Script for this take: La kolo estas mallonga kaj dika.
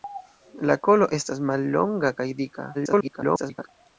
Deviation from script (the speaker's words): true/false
true